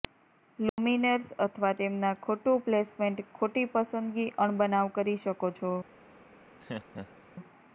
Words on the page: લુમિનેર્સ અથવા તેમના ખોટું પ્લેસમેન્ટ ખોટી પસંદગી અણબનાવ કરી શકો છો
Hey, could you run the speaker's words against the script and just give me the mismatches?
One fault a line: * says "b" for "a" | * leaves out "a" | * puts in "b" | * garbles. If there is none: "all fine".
all fine